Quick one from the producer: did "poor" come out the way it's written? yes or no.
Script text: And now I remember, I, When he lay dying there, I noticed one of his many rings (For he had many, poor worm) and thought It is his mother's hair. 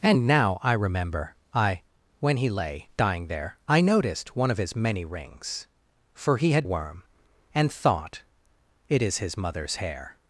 no